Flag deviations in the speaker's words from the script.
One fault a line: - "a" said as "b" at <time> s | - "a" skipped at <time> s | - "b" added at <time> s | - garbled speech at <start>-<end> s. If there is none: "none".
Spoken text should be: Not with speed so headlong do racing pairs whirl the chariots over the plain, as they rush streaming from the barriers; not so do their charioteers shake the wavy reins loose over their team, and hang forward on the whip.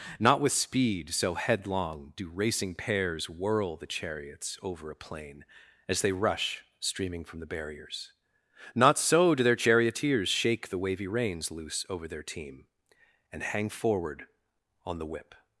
- "the" said as "a" at 4.9 s